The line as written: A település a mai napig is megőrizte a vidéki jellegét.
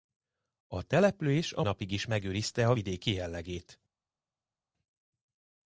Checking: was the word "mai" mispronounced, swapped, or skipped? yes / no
yes